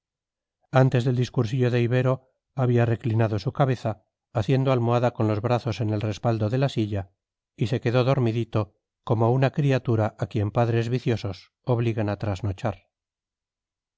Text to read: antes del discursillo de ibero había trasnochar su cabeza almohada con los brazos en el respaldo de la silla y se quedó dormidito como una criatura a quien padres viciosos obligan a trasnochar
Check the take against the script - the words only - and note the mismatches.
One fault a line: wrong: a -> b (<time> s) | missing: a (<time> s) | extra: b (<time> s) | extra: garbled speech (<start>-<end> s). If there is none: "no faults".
wrong: trasnochar -> reclinado (2.9 s)
extra: haciendo (4.3 s)